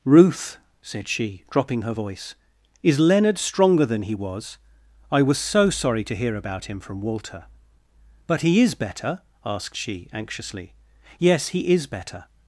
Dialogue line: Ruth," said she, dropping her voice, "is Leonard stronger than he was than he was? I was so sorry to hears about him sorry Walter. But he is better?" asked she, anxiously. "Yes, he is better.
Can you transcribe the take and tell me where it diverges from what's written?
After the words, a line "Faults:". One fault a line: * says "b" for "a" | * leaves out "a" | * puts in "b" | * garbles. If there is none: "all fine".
Ruth," said she, dropping her voice, "is Leonard stronger than he was? I was so sorry to hear about him from Walter. But he is better?" asked she, anxiously. "Yes, he is better.
Faults:
* leaves out "than he was"
* says "hear" for "hears"
* says "from" for "sorry"